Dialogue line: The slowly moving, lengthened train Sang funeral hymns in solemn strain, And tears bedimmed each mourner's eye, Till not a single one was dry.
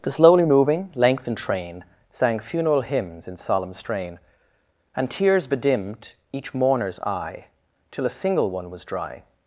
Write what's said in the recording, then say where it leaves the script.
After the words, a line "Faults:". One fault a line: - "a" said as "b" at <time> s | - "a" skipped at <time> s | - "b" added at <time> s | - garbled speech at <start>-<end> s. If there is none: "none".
The slowly moving, lengthened train Sang funeral hymns in solemn strain, And tears bedimmed each mourner's eye, Till a single one was dry.
Faults:
- "not" skipped at 8.1 s